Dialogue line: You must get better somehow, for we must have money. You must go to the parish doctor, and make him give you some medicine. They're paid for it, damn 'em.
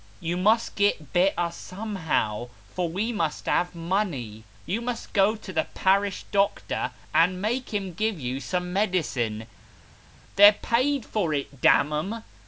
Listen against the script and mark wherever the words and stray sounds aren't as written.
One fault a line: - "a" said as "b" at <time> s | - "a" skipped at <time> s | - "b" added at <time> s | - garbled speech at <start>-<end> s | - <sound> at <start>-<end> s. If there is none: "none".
none